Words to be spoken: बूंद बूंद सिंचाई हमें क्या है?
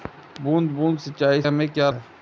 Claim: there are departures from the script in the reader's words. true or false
false